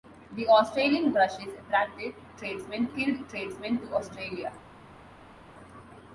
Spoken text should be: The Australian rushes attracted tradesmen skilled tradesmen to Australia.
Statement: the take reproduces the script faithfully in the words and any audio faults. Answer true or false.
true